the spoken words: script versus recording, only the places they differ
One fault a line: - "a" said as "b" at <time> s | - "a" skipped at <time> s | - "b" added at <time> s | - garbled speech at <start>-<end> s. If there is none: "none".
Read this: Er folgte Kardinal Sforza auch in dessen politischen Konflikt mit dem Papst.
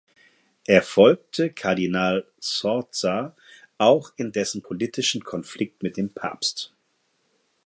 none